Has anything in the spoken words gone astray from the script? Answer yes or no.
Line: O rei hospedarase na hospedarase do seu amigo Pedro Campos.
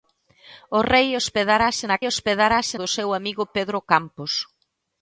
no